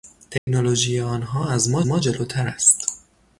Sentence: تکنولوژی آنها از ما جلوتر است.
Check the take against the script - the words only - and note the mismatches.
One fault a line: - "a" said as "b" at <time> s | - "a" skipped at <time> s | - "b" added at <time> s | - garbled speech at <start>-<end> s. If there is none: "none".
- "ما" added at 1.9 s